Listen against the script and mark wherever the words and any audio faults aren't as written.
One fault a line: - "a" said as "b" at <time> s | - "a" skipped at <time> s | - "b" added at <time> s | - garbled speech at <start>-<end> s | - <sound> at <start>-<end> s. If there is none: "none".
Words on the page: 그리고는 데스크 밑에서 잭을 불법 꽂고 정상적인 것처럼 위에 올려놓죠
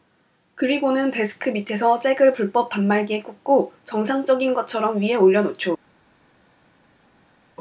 - "단말기에" added at 2.7 s